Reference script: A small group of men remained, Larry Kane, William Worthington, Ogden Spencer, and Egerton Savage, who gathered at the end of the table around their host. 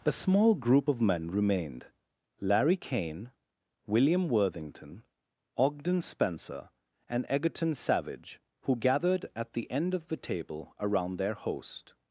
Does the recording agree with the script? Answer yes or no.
yes